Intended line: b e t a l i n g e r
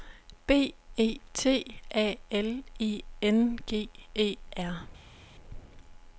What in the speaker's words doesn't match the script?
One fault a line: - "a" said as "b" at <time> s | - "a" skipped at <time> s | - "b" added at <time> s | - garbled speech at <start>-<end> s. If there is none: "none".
none